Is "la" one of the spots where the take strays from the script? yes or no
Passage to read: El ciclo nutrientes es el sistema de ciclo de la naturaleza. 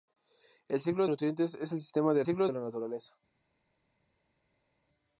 no